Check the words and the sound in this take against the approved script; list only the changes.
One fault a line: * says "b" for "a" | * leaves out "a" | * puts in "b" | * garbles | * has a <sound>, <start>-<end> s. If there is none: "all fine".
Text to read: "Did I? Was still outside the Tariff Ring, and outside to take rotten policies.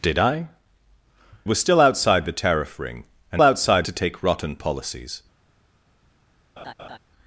* has a laugh, 6.6-7.0 s